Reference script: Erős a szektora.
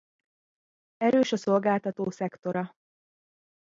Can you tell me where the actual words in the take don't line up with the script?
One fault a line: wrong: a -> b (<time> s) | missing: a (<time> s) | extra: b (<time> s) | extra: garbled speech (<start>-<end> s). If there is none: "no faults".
extra: szolgáltató (1.3 s)